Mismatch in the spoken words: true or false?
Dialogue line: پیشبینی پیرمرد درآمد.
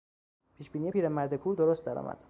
true